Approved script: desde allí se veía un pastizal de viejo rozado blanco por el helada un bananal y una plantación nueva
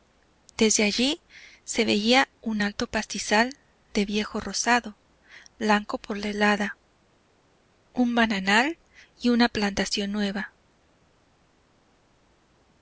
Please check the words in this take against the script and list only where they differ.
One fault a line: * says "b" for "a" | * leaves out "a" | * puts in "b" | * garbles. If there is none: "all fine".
* puts in "alto"
* says "la" for "el"